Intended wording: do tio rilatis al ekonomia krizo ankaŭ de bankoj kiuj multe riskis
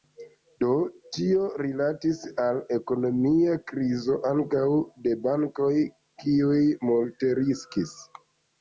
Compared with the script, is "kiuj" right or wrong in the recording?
right